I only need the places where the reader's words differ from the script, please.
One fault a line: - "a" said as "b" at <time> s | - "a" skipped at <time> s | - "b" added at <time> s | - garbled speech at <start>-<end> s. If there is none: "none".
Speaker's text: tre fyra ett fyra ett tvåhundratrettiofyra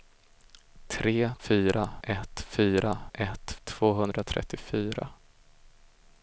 none